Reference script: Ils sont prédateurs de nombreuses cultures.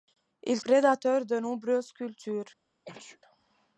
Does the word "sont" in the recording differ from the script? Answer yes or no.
yes